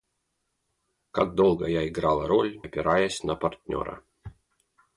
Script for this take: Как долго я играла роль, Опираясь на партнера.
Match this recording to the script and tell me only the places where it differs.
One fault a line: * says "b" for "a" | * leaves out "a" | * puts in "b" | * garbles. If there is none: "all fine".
all fine